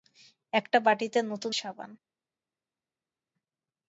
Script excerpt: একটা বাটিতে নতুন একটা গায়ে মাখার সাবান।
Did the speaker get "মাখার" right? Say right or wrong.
wrong